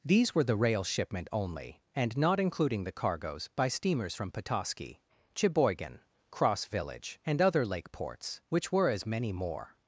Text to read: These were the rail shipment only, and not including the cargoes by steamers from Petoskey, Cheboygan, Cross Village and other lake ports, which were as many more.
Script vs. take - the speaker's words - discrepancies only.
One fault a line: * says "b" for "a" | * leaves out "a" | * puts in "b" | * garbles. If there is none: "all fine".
all fine